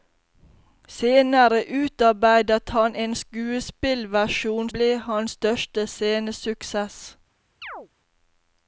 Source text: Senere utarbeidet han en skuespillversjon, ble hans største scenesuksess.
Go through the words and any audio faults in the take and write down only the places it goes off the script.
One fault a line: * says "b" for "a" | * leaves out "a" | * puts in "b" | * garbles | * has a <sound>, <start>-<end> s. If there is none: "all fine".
* has a chirp, 7.6-7.9 s